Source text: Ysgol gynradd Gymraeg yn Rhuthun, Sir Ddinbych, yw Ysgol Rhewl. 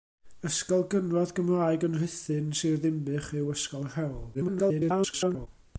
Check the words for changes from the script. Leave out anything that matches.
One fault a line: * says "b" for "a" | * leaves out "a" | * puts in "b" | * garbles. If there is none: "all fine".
* garbles